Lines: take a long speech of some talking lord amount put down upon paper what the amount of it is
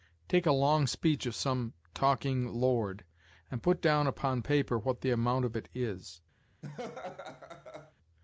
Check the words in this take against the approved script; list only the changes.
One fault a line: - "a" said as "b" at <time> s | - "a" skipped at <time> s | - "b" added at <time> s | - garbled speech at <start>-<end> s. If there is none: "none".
- "amount" said as "and" at 3.5 s